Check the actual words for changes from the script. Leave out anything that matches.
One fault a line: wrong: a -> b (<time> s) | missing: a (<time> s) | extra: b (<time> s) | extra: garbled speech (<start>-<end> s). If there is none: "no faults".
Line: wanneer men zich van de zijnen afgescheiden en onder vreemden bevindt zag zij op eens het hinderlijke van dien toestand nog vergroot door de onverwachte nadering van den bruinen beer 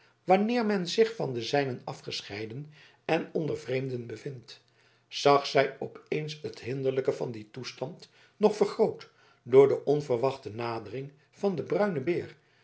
no faults